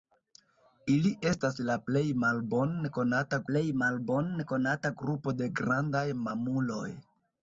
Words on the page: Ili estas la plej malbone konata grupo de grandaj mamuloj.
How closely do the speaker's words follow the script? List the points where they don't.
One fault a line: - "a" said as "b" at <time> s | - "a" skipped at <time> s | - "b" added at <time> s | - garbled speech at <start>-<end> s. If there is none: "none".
- "plej malbone konata" added at 3.5 s